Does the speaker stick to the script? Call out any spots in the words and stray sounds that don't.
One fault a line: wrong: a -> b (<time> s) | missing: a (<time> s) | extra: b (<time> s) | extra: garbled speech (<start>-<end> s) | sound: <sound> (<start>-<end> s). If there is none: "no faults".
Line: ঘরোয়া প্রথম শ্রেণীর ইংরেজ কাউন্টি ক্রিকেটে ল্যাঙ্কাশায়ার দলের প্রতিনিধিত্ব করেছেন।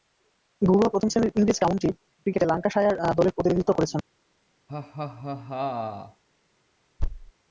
sound: laugh (4.7-6.2 s)
sound: thud (7.0-7.3 s)